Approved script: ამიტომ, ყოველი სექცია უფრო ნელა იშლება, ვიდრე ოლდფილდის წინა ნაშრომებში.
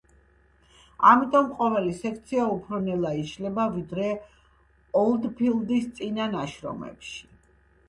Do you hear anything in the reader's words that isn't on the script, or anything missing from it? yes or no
no